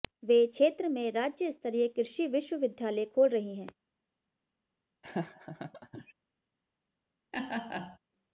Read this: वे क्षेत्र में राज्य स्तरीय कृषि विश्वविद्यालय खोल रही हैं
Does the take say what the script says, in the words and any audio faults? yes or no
no